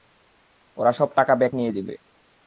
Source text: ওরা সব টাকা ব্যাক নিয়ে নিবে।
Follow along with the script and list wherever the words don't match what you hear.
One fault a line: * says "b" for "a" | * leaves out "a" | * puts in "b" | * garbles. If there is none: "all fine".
all fine